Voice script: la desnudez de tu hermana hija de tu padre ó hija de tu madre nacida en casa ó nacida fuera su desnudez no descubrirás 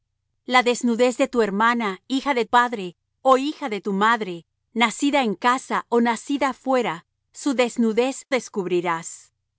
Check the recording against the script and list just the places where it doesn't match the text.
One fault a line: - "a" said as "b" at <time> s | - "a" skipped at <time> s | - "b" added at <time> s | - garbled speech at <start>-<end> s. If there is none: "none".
- "tu" skipped at 2.5 s
- "no" skipped at 8.3 s